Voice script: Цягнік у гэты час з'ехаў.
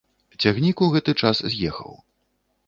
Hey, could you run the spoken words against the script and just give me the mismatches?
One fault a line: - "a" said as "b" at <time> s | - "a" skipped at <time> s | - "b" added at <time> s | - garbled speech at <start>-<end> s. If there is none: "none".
none